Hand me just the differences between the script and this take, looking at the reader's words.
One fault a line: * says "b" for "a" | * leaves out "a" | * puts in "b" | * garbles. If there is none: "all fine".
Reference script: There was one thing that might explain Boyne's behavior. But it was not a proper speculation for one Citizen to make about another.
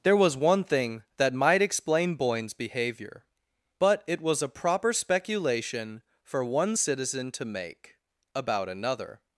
* leaves out "not"